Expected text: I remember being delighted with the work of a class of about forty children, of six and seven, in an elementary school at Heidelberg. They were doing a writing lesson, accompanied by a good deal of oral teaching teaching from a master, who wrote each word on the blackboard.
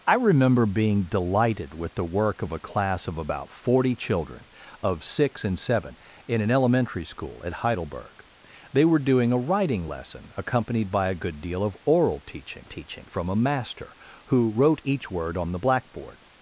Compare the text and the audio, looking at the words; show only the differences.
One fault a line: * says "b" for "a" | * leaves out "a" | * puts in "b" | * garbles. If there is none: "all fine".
all fine